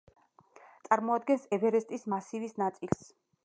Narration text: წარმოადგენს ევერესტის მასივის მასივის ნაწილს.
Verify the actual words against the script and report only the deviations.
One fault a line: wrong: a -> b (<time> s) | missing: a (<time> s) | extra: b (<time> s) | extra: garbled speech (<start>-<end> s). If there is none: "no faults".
missing: მასივის (2.6 s)